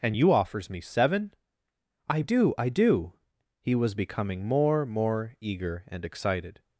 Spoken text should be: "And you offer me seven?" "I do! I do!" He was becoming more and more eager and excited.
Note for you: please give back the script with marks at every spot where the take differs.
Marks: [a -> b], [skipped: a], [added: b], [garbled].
"And you [offer -> offers] me seven?" "I do! I do!" He was becoming more [skipped: and] more eager and excited.